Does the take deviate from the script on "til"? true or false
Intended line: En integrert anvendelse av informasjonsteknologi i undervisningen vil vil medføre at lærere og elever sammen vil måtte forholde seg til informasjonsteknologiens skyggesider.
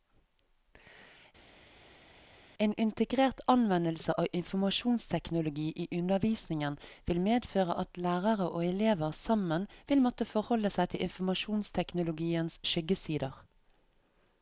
false